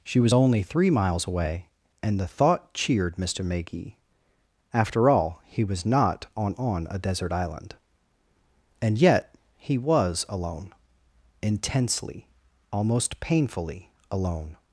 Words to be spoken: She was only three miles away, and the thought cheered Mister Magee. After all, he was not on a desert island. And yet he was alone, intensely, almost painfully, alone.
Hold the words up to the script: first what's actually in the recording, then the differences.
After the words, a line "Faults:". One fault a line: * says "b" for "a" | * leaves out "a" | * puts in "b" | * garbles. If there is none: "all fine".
She was only three miles away, and the thought cheered Mister Magee. After all, he was not on on a desert island. And yet he was alone, intensely, almost painfully, alone.
Faults:
* puts in "on"